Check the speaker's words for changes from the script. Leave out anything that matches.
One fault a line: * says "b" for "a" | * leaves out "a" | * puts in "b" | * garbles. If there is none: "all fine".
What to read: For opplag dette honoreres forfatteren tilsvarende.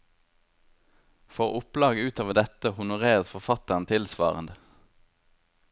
* puts in "utover"